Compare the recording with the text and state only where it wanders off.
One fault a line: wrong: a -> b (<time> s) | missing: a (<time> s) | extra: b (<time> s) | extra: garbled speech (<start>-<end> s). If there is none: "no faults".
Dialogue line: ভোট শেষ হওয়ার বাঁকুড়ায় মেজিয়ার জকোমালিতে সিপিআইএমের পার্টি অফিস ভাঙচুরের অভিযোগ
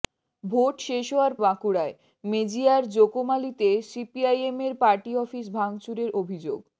no faults